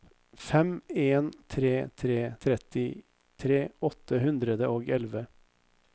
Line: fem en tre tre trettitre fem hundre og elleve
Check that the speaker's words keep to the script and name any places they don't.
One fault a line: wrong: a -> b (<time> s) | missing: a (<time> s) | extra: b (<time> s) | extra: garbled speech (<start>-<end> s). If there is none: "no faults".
wrong: fem -> åtte (3.9 s)